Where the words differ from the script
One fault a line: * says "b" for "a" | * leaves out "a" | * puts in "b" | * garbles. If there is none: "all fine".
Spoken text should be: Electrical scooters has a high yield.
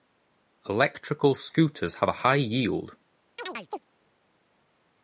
* says "have" for "has"